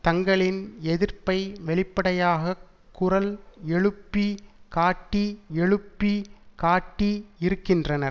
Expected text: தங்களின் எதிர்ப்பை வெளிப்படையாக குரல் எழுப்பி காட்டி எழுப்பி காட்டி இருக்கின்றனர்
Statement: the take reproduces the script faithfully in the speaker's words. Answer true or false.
true